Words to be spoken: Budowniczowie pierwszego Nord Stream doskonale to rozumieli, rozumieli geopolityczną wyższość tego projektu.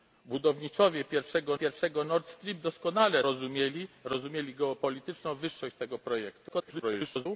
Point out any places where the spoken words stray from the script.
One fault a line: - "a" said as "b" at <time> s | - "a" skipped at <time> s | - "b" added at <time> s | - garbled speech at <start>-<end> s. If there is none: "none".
- "pierwszego" added at 1.5 s
- "to" skipped at 3.2 s
- garbled speech at 6.5-7.3 s